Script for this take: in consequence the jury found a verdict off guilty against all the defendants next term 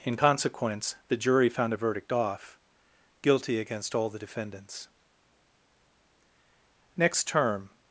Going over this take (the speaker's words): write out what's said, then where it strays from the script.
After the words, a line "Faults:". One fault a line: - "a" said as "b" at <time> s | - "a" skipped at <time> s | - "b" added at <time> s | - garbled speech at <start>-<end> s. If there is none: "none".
in consequence the jury found a verdict off guilty against all the defendants next term
Faults:
none